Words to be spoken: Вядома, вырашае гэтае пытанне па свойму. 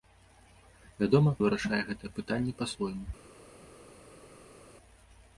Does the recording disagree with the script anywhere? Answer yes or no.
no